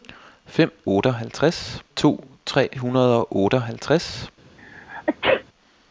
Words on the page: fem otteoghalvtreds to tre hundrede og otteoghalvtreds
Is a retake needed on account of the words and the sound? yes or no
yes